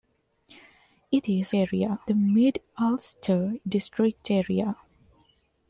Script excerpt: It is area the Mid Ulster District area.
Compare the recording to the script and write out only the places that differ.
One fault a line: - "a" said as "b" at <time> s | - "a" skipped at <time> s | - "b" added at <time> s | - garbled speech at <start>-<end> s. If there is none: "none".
none